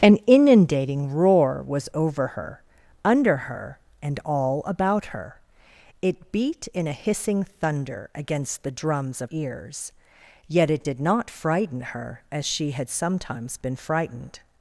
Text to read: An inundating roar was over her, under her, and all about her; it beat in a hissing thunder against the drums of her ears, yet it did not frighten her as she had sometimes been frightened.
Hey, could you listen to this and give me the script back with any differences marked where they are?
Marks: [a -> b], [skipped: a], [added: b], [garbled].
An inundating roar was over her, under her, and all about her; it beat in a hissing thunder against the drums of [skipped: her] ears, yet it did not frighten her as she had sometimes been frightened.